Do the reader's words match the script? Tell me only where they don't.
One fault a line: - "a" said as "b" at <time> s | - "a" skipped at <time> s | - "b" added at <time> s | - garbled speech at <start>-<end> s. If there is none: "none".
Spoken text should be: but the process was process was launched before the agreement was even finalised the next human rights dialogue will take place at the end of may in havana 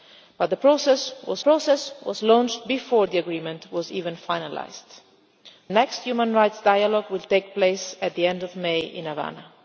none